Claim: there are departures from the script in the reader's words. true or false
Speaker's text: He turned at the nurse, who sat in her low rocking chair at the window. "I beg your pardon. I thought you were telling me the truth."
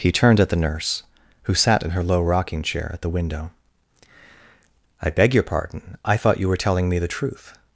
false